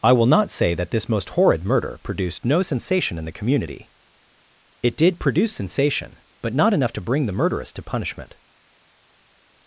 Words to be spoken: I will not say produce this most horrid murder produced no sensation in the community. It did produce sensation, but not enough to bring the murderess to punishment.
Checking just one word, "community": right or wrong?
right